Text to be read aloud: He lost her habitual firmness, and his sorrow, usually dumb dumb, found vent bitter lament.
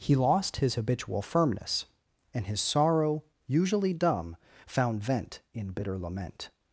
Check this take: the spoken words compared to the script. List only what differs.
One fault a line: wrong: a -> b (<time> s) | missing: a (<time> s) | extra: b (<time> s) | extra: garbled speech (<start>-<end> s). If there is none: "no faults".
wrong: her -> his (0.6 s)
missing: dumb (4.3 s)
extra: in (5.5 s)